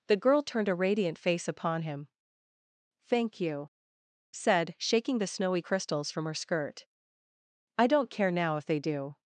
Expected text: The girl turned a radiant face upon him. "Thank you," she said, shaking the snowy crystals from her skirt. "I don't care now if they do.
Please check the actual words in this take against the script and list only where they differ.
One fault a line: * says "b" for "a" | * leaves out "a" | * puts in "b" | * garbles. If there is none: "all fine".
* leaves out "she"